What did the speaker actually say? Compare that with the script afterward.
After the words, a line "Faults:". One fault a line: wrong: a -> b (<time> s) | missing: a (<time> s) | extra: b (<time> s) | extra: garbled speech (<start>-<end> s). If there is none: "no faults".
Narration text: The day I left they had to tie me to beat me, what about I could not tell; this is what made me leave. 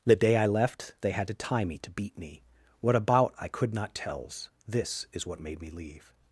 The day I left they had to tie me to beat me, what about I could not tells; this is what made me leave.
Faults:
wrong: tell -> tells (4.0 s)